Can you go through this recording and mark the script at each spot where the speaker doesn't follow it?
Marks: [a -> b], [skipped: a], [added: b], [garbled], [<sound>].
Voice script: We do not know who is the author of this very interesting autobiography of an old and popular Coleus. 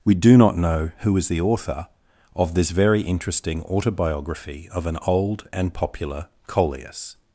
We do not know who is the author of this very interesting autobiography of an old and popular Coleus.